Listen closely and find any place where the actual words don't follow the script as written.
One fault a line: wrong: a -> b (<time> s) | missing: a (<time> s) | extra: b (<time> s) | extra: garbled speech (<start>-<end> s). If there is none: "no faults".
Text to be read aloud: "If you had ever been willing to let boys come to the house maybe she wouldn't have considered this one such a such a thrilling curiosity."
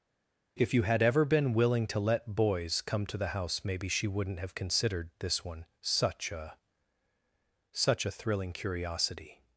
no faults